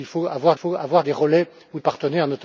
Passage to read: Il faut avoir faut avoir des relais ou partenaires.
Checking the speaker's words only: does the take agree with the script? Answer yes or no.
yes